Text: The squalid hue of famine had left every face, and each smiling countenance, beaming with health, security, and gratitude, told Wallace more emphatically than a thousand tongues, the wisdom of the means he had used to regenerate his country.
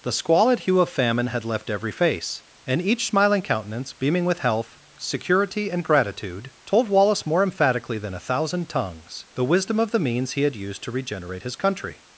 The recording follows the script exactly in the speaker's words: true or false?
true